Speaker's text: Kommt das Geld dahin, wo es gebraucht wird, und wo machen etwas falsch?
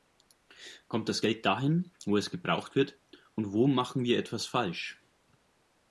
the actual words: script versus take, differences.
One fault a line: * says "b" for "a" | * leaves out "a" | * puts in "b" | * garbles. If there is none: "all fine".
* puts in "wir"